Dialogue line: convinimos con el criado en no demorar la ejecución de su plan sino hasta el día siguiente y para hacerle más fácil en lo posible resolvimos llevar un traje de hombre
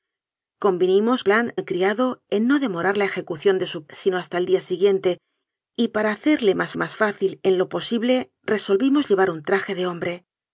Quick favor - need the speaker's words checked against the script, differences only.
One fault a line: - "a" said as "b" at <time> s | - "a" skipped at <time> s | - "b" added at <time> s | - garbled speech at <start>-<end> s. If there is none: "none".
- "con" said as "plan" at 1.2 s
- "plan" skipped at 3.8 s
- "más" added at 6.8 s